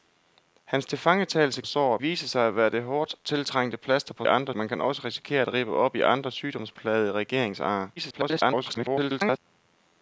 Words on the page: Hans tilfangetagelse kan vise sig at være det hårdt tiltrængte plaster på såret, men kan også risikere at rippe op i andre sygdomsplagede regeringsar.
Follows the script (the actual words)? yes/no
no